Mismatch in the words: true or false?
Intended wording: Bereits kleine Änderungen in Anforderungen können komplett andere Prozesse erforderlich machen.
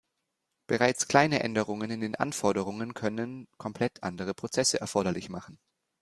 true